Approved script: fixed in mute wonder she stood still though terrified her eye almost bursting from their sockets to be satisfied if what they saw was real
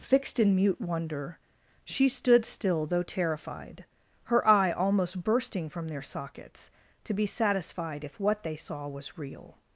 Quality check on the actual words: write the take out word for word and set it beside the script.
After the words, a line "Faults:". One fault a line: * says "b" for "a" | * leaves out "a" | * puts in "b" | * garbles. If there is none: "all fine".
fixed in mute wonder she stood still though terrified her eye almost bursting from their sockets to be satisfied if what they saw was real
Faults:
all fine